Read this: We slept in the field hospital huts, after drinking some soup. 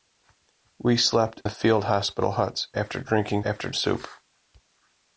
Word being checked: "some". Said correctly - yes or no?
no